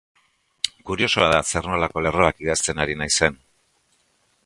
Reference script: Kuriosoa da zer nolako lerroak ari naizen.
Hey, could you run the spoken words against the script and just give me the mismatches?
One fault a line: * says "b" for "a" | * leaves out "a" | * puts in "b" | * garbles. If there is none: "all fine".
* puts in "idazten"